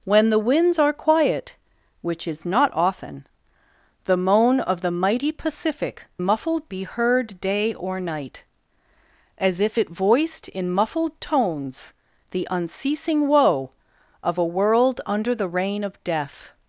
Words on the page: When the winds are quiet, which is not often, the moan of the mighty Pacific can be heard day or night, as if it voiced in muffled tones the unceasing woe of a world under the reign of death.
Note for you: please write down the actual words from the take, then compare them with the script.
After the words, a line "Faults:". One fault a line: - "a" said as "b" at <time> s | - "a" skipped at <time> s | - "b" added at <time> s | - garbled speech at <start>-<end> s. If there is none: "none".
When the winds are quiet, which is not often, the moan of the mighty Pacific muffled be heard day or night, as if it voiced in muffled tones the unceasing woe of a world under the reign of death.
Faults:
- "can" said as "muffled" at 6.2 s